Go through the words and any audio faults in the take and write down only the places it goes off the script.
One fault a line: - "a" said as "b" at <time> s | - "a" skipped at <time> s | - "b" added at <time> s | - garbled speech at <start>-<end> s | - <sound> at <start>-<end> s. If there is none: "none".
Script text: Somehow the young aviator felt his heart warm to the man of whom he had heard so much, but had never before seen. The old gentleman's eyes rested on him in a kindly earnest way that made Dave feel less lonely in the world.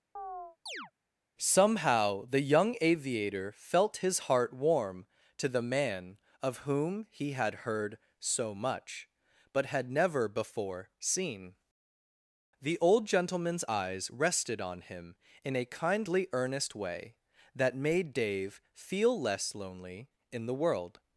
- chirp at 0.2-0.9 s